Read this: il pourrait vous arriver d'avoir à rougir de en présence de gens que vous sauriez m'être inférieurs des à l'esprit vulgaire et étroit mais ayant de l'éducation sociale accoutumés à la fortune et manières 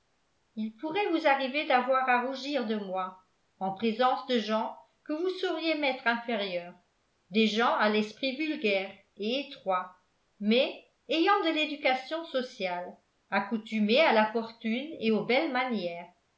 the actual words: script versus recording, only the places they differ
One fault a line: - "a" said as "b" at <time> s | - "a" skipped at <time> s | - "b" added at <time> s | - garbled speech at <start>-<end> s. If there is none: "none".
- "moi" added at 2.8 s
- "gens" added at 7.5 s
- "aux belles" added at 15.1 s